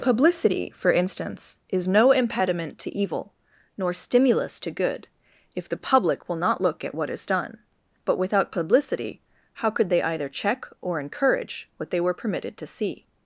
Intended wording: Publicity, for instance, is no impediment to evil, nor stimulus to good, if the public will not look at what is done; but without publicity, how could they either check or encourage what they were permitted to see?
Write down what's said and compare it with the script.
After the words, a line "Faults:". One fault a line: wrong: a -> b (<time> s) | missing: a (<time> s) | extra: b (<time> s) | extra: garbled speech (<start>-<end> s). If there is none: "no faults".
Publicity, for instance, is no impediment to evil, nor stimulus to good, if the public will not look at what is done; but without publicity, how could they either check or encourage what they were permitted to see?
Faults:
no faults